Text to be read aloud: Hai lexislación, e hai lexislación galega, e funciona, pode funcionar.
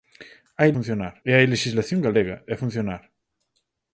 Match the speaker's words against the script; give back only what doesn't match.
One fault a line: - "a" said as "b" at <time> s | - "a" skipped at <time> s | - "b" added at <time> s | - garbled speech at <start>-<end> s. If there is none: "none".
- "lexislación" said as "funcionar" at 0.7 s
- "funciona pode" skipped at 2.6 s